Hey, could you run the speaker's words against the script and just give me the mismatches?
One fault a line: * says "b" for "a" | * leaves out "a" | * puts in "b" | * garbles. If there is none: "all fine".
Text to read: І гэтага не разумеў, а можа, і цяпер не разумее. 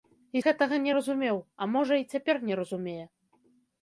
all fine